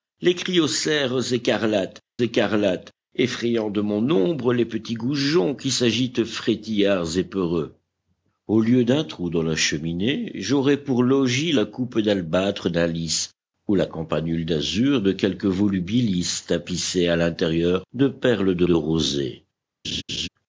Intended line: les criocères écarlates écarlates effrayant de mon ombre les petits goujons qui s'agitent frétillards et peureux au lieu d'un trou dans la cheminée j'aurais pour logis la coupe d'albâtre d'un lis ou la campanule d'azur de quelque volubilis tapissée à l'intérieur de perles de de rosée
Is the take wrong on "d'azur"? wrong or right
right